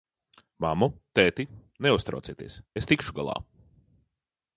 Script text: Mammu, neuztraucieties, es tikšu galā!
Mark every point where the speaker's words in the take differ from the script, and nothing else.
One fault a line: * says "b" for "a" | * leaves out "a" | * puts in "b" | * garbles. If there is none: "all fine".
* puts in "tēti"